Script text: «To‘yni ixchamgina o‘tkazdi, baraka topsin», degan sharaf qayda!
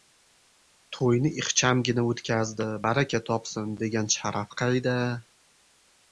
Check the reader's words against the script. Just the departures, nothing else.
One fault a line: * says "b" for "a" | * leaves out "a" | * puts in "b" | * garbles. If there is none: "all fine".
all fine